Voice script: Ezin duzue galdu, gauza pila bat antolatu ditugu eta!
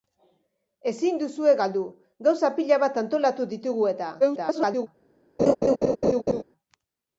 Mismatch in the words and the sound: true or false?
true